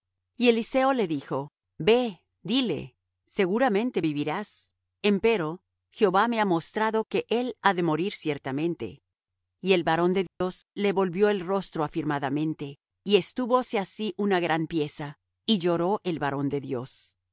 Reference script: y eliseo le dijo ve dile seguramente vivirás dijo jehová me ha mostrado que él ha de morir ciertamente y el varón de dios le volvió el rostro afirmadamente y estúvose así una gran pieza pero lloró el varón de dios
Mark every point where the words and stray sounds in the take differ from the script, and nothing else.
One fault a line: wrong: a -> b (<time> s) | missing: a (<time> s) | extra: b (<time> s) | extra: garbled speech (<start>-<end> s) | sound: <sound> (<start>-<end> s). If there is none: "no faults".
wrong: dijo -> empero (5.0 s)
sound: dropout (10.3-10.4 s)
wrong: pero -> y (15.5 s)